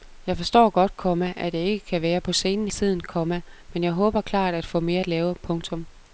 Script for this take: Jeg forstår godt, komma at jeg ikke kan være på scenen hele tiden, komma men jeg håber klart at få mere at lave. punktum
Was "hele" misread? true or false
true